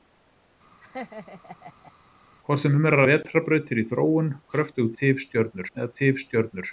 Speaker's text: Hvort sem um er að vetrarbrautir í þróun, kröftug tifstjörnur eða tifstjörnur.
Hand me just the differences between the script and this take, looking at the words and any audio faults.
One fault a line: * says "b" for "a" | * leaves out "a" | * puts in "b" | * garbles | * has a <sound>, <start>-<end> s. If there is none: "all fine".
* has a laugh, 0.8-1.9 s